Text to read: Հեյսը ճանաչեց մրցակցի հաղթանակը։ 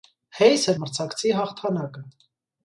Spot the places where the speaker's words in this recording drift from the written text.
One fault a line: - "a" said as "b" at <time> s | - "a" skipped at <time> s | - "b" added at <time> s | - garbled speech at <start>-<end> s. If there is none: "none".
- "ճանաչեց" skipped at 0.7 s